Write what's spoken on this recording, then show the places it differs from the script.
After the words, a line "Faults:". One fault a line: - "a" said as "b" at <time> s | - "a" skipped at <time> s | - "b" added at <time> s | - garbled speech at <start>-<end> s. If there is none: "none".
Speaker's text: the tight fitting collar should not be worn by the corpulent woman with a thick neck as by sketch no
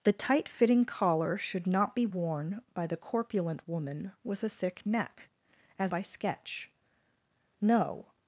the tight fitting collar should not be worn by the corpulent woman with a thick neck as by sketch no
Faults:
none